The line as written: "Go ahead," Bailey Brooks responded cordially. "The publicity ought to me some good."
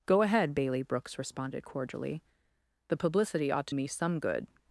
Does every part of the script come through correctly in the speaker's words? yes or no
yes